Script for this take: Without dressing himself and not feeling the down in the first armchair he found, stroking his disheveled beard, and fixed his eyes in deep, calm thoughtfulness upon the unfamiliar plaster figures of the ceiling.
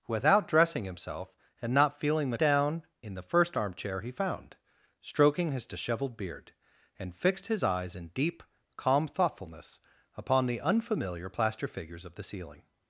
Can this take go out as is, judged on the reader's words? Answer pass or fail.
pass